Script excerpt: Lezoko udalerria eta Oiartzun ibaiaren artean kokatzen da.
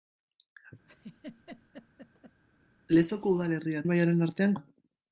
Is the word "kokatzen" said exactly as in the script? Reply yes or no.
no